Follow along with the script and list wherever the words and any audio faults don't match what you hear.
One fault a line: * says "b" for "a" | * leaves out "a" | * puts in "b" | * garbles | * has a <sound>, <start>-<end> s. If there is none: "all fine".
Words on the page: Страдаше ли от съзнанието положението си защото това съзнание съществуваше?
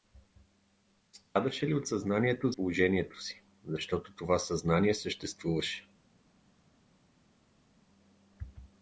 all fine